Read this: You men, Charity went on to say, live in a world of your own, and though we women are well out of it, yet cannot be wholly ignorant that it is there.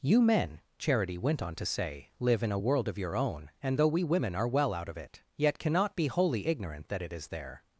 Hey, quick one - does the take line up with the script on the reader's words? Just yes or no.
yes